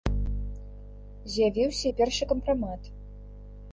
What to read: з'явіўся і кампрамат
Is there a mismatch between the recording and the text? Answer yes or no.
yes